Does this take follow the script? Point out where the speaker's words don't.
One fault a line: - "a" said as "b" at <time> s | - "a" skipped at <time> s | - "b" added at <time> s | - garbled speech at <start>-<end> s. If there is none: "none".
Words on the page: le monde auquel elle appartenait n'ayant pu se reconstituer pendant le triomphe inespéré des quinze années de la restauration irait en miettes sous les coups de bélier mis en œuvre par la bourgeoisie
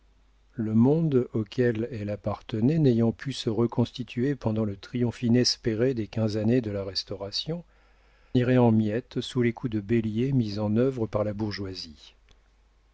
none